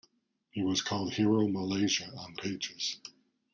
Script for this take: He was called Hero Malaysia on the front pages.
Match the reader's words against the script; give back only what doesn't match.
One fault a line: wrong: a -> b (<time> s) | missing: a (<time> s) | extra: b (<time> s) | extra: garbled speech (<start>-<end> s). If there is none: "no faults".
missing: front (2.4 s)